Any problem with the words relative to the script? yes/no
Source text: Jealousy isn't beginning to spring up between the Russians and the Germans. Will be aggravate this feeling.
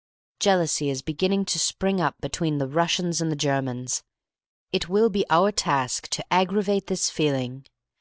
yes